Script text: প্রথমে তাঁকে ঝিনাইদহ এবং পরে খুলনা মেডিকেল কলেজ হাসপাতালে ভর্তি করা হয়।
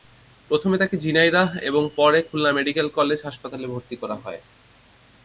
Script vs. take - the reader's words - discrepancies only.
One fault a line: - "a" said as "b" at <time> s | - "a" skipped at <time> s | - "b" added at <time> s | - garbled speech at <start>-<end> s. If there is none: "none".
none